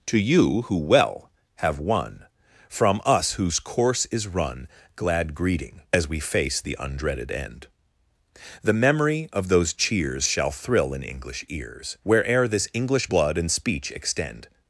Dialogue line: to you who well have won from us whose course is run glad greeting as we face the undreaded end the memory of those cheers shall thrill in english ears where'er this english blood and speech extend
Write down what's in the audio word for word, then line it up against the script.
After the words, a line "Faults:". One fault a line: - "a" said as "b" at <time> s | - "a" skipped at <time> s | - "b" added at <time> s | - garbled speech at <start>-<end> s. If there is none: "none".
to you who well have won from us whose course is run glad greeting as we face the undreaded end the memory of those cheers shall thrill in english ears where'er this english blood and speech extend
Faults:
none